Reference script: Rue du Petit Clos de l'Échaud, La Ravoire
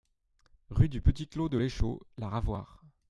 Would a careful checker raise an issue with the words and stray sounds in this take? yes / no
no